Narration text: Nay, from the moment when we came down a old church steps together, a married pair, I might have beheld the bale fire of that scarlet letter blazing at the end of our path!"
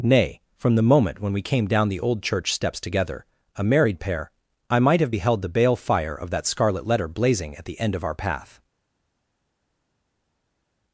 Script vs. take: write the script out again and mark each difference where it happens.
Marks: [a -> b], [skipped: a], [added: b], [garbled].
Nay, from the moment when we came down [a -> the] old church steps together, a married pair, I might have beheld the bale fire of that scarlet letter blazing at the end of our path!"